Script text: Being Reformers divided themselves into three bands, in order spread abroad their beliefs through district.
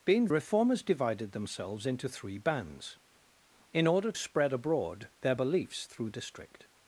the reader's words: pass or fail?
pass